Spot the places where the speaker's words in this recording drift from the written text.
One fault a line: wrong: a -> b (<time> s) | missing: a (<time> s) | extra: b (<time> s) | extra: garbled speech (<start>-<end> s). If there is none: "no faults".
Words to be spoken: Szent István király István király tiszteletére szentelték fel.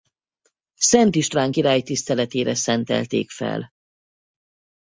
missing: István király (1.8 s)